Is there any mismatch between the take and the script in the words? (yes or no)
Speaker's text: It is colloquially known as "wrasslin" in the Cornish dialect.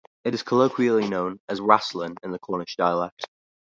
no